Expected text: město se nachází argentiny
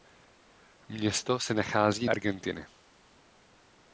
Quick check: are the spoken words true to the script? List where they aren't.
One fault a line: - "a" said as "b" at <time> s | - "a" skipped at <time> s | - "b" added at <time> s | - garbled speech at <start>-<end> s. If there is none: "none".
none